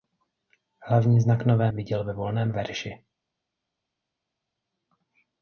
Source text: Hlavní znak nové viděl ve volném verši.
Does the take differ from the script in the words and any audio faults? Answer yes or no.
no